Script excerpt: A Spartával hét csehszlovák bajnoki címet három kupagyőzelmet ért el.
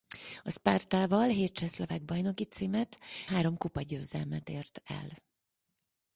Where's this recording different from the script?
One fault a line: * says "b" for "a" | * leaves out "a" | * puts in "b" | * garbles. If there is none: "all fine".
all fine